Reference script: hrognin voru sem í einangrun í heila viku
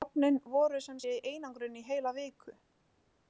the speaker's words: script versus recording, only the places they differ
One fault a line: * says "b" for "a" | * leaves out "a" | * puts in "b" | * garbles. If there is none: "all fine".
* puts in "sé"